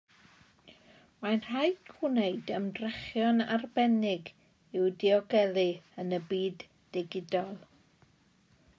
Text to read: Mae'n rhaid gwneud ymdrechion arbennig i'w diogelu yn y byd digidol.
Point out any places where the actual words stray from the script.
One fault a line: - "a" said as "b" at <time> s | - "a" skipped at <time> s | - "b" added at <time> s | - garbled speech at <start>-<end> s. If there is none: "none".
none